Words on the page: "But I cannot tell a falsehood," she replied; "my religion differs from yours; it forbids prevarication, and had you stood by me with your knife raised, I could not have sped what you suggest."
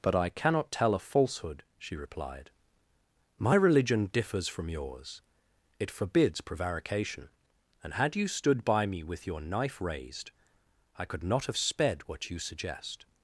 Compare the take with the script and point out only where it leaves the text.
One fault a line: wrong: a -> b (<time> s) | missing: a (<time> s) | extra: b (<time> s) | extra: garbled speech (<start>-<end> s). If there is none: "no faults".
no faults